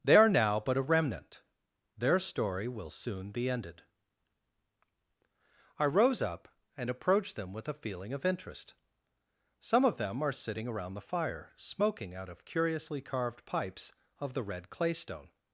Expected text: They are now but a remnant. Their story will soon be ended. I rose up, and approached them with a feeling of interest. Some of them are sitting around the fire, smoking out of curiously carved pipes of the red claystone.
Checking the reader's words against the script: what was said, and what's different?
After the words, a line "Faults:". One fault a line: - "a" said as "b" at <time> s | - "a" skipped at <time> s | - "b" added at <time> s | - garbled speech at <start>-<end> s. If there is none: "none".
They are now but a remnant. Their story will soon be ended. I rose up, and approached them with a feeling of interest. Some of them are sitting around the fire, smoking out of curiously carved pipes of the red claystone.
Faults:
none